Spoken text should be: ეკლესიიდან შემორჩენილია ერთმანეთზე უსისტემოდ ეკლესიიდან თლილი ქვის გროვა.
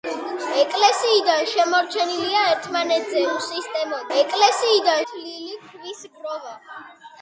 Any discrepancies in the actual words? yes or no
no